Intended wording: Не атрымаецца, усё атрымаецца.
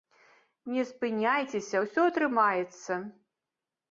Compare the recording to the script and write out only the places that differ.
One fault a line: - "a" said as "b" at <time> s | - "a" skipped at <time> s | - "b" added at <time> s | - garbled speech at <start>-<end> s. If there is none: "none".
- "атрымаецца" said as "спыняйцеся" at 0.9 s